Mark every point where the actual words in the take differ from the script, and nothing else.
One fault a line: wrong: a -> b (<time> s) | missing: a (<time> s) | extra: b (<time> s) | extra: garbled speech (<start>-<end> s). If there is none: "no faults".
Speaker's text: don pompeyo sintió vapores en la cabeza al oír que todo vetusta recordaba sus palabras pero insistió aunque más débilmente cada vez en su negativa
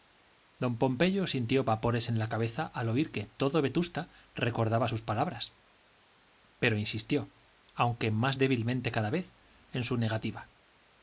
no faults